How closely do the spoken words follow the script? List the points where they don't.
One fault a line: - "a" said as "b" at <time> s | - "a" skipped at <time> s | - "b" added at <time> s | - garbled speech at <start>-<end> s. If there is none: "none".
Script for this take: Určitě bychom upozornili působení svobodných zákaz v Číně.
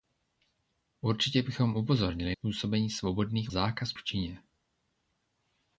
none